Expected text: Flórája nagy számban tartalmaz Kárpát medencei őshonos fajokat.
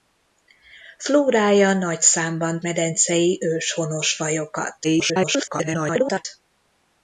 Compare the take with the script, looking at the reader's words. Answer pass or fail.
fail